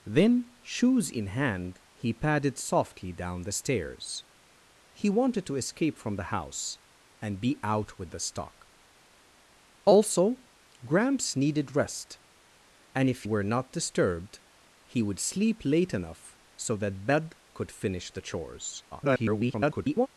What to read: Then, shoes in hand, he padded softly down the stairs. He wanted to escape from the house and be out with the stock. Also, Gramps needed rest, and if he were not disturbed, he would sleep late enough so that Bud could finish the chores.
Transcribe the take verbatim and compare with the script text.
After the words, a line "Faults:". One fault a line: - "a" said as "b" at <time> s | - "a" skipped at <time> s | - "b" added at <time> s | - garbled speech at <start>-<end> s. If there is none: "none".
Then, shoes in hand, he padded softly down the stairs. He wanted to escape from the house and be out with the stock. Also, Gramps needed rest, and if were not disturbed, he would sleep late enough so that Bud could finish the chores. [garbled]
Faults:
- "he" skipped at 13.2 s
- garbled speech at 18.9-20.1 s